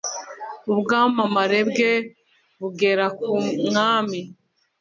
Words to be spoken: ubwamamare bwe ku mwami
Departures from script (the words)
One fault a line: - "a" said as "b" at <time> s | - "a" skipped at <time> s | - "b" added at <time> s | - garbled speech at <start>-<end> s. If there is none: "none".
- "bugera" added at 2.6 s